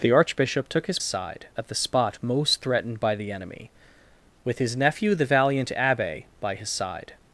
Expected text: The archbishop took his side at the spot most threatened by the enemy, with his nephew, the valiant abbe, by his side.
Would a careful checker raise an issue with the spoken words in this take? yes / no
no